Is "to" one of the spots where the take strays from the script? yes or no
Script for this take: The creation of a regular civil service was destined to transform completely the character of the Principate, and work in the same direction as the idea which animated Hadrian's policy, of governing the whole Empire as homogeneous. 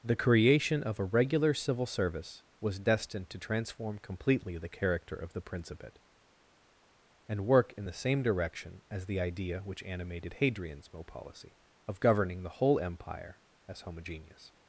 no